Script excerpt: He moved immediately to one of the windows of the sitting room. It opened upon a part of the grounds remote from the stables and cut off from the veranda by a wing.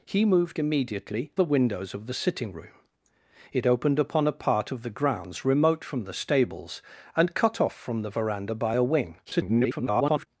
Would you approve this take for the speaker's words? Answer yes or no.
no